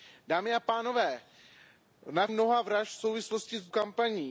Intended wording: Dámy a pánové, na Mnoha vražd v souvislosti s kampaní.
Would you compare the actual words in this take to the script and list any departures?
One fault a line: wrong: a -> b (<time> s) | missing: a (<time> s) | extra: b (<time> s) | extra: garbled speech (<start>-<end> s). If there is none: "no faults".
no faults